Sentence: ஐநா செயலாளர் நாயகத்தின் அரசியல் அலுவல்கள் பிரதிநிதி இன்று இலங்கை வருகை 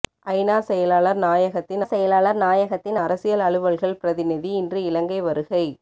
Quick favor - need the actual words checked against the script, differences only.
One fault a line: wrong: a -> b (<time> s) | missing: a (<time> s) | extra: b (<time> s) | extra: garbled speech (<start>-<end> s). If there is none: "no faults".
extra: செயலாளர் நாயகத்தின் (1.8 s)